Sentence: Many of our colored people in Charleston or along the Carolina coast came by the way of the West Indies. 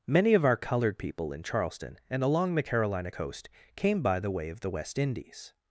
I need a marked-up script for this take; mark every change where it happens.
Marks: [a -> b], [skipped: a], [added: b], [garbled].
Many of our colored people in Charleston [or -> and] along the Carolina coast came by the way of the West Indies.